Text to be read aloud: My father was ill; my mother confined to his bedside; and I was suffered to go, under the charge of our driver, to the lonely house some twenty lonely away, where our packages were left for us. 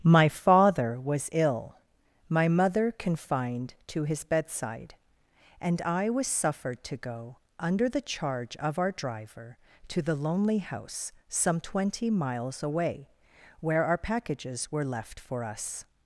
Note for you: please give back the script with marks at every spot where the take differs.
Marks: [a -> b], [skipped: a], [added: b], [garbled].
My father was ill; my mother confined to his bedside; and I was suffered to go, under the charge of our driver, to the lonely house some twenty [lonely -> miles] away, where our packages were left for us.